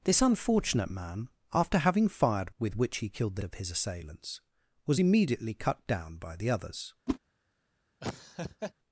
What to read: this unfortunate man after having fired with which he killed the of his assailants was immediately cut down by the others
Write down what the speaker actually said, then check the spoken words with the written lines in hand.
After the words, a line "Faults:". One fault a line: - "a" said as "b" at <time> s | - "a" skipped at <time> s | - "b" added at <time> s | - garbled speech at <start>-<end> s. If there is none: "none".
this unfortunate man after having fired with which he killed the of his assailants was immediately cut down by the others
Faults:
none